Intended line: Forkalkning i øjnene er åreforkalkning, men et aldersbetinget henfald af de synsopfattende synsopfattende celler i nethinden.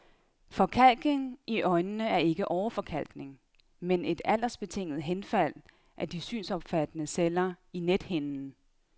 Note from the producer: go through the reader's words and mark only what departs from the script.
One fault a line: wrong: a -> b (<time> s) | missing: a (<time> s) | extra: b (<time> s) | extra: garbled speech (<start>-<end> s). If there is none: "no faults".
extra: ikke (2.2 s)
missing: synsopfattende (7.1 s)